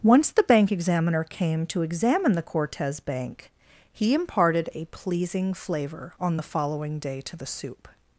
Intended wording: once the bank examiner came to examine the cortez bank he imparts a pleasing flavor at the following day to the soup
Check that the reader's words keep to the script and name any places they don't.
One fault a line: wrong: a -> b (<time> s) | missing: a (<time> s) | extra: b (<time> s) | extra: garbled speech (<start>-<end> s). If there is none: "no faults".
wrong: imparts -> imparted (4.2 s)
wrong: at -> on (6.2 s)